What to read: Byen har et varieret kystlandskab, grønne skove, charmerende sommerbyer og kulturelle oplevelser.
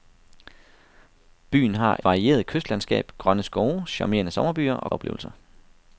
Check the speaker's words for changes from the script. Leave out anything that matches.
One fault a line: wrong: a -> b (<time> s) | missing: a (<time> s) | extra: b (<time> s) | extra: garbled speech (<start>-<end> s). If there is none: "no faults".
missing: et (2.0 s)
missing: kulturelle (4.9 s)